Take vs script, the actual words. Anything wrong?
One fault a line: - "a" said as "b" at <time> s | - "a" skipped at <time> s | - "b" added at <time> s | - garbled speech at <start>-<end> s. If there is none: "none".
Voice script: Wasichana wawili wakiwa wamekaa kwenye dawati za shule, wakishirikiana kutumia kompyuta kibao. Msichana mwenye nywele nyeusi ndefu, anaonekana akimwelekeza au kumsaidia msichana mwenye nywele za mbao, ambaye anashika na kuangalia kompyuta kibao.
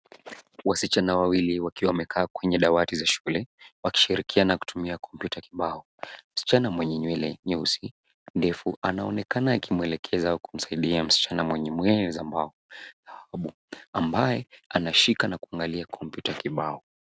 none